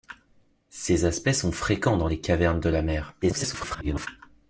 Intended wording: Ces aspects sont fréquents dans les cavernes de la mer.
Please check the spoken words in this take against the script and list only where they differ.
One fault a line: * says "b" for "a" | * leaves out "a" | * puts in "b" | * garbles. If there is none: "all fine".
* garbles